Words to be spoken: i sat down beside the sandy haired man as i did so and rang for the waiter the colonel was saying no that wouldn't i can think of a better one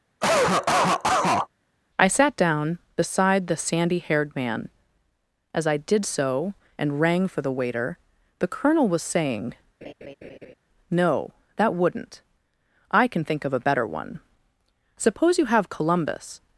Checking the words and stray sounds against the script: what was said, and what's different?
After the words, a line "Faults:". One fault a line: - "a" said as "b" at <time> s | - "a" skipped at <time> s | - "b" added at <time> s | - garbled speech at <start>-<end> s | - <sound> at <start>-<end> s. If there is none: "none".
i sat down beside the sandy haired man as i did so and rang for the waiter the colonel was saying no that wouldn't i can think of a better one suppose you have columbus
Faults:
- cough at 0.2-1.5 s
- laugh at 9.8-10.5 s
- "suppose you have columbus" added at 15.0 s